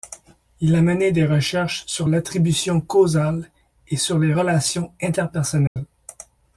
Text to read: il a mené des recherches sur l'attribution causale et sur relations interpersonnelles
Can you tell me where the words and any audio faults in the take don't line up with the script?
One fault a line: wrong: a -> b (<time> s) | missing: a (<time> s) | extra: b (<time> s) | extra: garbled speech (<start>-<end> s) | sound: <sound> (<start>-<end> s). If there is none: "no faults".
extra: les (4.2 s)
sound: dropout (5.7-5.8 s)